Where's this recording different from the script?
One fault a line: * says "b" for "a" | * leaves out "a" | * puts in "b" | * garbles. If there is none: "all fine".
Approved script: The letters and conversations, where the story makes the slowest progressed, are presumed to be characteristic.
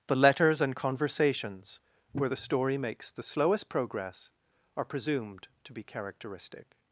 * says "progress" for "progressed"